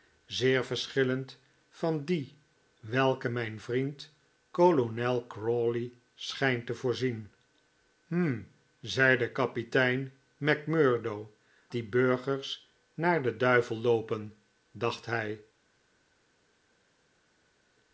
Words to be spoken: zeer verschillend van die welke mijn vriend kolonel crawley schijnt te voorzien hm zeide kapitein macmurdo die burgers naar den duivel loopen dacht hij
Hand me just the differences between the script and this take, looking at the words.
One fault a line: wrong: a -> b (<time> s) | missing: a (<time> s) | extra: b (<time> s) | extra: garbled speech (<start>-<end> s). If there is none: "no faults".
no faults